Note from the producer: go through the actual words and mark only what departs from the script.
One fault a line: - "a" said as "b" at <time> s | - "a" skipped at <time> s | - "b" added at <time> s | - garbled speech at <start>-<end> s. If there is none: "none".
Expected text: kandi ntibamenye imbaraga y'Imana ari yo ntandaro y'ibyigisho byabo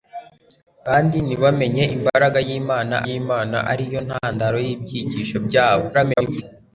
- "y'Imana" added at 3.1 s
- garbled speech at 5.9-6.4 s